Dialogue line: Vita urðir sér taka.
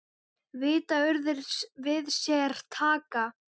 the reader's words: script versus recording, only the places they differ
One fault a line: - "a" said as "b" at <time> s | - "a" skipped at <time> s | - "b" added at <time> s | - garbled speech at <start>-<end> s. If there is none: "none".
- "við" added at 1.9 s